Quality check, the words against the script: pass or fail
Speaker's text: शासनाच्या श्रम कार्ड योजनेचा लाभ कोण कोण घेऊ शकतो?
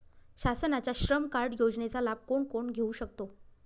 pass